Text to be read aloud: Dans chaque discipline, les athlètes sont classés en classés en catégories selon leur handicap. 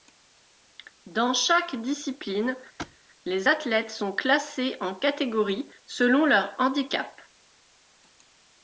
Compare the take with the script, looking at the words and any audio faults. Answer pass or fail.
fail